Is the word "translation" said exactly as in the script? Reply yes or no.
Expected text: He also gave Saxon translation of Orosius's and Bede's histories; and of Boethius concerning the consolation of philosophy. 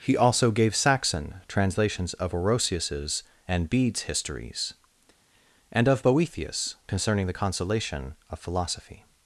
no